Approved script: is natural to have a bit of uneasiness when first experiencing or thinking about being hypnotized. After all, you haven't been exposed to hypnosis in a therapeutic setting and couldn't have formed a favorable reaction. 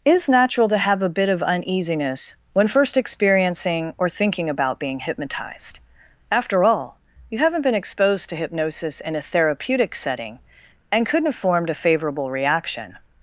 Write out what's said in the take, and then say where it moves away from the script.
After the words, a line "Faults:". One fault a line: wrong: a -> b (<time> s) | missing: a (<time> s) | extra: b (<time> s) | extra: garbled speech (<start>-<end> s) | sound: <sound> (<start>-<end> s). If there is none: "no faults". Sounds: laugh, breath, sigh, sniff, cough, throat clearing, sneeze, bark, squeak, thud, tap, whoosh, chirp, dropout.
is natural to have a bit of uneasiness when first experiencing or thinking about being hypnotized. After all, you haven't been exposed to hypnosis in a therapeutic setting and couldn't have formed a favorable reaction.
Faults:
no faults